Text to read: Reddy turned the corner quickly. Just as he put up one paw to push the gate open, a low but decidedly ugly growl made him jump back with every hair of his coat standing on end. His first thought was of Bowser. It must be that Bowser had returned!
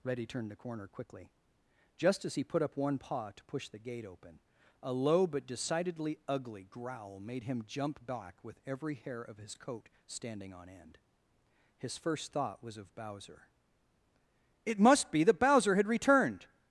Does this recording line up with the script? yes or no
yes